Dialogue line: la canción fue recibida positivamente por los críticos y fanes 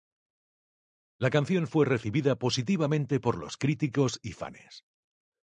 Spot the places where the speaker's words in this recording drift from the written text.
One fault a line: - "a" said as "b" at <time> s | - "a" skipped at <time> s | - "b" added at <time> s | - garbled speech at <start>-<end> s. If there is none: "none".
none